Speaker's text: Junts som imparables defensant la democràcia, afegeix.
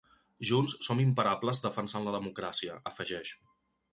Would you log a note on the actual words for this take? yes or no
no